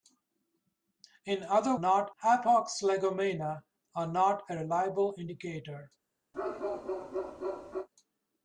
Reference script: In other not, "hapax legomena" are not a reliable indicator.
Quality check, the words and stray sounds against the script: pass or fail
fail